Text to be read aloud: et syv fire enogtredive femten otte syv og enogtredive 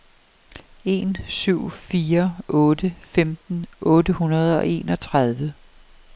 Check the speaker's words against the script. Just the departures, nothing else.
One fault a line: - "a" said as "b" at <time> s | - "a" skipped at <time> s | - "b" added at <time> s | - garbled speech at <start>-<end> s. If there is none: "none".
- "et" said as "en" at 0.8 s
- "enogtredive" said as "otte" at 2.5 s
- "syv" said as "hundrede" at 4.1 s